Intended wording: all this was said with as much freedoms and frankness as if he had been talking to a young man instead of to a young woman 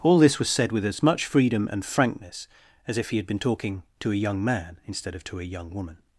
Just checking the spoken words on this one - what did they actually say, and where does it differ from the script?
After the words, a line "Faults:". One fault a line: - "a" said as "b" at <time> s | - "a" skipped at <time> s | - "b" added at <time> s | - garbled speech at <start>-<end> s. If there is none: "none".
all this was said with as much freedom and frankness as if he had been talking to a young man instead of to a young woman
Faults:
- "freedoms" said as "freedom" at 1.3 s